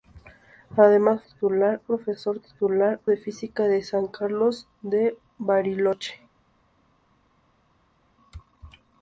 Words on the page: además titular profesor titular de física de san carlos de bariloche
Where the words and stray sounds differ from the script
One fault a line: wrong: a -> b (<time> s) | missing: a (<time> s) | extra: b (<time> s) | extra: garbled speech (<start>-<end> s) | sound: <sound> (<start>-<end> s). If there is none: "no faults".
no faults